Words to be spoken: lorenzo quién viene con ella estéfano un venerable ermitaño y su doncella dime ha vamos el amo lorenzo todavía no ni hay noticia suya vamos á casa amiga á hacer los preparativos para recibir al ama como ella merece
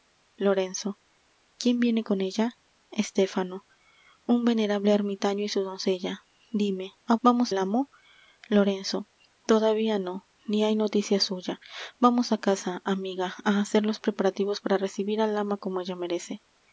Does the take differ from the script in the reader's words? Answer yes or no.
no